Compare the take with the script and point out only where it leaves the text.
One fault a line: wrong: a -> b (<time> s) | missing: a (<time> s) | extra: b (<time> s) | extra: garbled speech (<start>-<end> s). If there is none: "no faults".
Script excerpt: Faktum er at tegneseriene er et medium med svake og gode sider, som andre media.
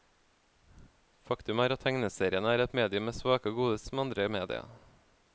missing: sider (3.8 s)